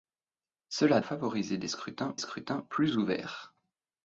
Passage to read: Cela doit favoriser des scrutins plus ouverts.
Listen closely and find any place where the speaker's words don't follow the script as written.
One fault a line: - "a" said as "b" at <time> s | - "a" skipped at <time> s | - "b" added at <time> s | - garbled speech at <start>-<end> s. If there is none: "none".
- "doit" skipped at 1.0 s
- "scrutins" added at 2.2 s